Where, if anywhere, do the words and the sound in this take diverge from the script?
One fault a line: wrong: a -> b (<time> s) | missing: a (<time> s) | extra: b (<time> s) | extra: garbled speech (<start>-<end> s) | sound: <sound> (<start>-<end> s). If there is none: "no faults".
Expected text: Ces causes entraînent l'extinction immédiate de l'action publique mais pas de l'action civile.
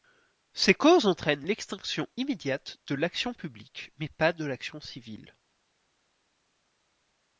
no faults